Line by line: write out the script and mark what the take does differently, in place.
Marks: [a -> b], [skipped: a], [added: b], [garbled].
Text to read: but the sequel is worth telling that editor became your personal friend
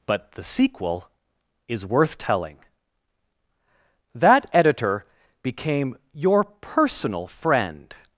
but the sequel is worth telling that editor became your personal friend